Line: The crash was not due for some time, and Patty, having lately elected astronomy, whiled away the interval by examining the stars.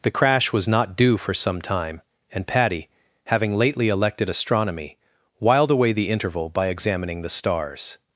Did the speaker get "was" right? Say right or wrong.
right